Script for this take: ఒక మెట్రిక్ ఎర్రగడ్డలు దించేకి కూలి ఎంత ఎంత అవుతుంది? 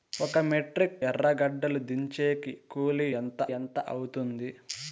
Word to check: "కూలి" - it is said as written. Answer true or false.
true